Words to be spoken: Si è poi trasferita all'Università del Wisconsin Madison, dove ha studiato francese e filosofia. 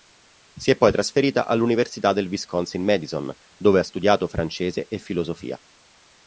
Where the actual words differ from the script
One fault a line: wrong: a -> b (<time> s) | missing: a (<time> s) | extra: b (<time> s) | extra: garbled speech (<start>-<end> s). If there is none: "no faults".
no faults